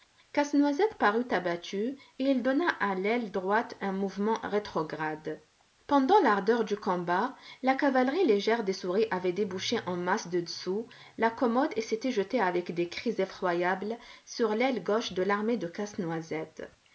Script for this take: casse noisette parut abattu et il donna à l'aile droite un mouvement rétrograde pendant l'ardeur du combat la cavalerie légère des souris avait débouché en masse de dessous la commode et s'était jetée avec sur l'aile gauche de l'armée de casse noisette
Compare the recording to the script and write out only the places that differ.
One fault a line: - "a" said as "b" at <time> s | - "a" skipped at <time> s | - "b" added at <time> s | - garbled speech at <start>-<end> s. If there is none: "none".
- "des cris effroyables" added at 12.7 s